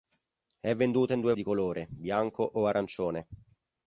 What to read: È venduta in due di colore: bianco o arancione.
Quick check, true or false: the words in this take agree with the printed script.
true